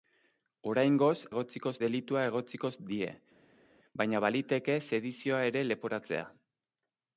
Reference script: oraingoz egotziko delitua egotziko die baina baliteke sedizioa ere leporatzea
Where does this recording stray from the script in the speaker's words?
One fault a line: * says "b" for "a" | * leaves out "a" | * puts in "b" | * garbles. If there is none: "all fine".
all fine